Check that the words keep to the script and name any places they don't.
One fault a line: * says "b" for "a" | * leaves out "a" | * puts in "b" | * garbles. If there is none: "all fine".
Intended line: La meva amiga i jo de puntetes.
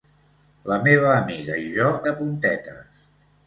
all fine